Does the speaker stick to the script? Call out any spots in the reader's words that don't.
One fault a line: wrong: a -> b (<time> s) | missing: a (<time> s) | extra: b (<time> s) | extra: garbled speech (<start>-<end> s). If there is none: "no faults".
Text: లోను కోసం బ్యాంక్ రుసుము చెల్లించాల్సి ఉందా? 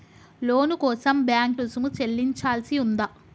no faults